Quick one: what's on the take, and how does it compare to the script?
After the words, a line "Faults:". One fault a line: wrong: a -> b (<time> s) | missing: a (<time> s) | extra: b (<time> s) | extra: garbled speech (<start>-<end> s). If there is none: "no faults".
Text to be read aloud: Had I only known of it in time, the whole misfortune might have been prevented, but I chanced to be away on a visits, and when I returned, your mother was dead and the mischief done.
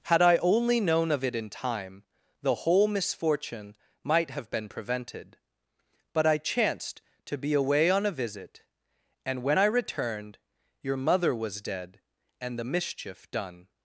Had I only known of it in time, the whole misfortune might have been prevented, but I chanced to be away on a visit, and when I returned, your mother was dead and the mischief done.
Faults:
wrong: visits -> visit (8.1 s)